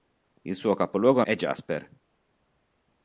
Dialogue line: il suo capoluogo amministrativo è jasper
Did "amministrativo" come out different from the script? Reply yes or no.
yes